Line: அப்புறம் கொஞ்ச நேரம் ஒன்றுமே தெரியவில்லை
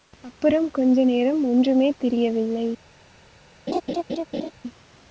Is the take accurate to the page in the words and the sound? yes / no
no